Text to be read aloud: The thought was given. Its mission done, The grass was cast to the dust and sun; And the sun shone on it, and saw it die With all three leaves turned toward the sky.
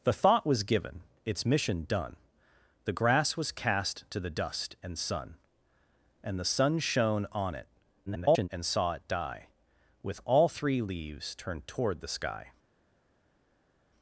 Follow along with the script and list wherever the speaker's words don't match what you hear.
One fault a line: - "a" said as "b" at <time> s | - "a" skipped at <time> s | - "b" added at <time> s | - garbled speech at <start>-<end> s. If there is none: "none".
- garbled speech at 8.1-8.5 s